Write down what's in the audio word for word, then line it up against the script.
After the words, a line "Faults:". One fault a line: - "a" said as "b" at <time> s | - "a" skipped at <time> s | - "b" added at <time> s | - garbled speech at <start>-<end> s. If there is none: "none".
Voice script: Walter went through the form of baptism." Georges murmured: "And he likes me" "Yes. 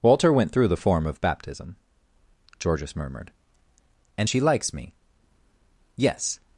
Walter went through the form of baptism." Georges murmured: "And she likes me" "Yes.
Faults:
- "he" said as "she" at 4.3 s